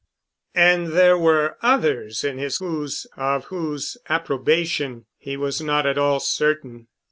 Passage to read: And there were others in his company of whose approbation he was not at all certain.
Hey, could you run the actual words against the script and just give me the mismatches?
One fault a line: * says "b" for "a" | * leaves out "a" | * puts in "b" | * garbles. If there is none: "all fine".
* says "whose" for "company"